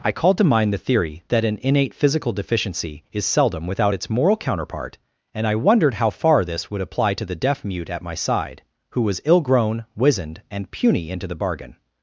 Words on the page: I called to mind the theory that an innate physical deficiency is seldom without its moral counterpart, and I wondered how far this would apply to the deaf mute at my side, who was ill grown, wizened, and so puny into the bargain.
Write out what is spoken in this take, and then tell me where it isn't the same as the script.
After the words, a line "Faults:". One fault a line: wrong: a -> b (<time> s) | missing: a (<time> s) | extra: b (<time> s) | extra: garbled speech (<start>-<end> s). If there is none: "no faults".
I called to mind the theory that an innate physical deficiency is seldom without its moral counterpart, and I wondered how far this would apply to the deaf mute at my side, who was ill grown, wizened, and puny into the bargain.
Faults:
missing: so (10.7 s)